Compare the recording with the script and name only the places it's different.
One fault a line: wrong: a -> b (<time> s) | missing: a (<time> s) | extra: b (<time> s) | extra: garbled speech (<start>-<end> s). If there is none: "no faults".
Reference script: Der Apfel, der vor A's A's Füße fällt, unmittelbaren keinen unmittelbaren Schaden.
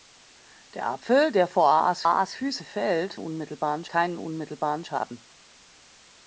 no faults